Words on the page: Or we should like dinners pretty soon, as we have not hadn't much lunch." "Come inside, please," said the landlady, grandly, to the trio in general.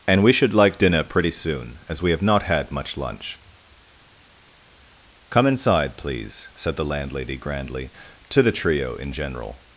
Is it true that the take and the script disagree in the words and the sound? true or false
true